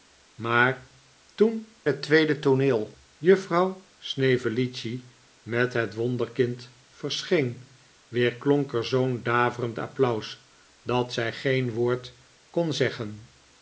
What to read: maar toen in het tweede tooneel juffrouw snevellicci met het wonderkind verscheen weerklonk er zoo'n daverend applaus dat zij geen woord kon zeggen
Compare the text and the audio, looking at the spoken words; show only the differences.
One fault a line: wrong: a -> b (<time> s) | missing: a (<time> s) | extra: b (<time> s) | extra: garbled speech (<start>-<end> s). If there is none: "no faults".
missing: in (1.7 s)